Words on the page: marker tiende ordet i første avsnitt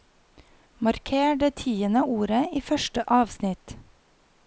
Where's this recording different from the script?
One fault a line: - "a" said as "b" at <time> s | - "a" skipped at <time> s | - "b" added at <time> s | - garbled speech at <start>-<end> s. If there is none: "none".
- "det" added at 1.4 s